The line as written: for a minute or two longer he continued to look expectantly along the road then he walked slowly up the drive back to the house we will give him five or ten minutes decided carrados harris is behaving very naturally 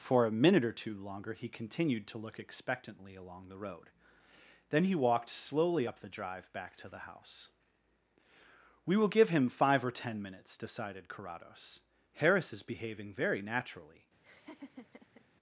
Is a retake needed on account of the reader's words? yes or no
no